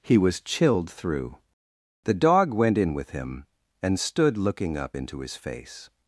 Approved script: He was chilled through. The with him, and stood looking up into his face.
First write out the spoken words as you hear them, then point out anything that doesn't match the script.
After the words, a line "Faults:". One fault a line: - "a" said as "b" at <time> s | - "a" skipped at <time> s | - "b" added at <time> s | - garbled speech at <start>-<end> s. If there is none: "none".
He was chilled through. The dog went in with him, and stood looking up into his face.
Faults:
- "dog went in" added at 2.1 s